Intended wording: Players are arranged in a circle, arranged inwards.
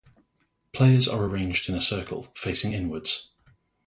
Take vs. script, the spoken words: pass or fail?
fail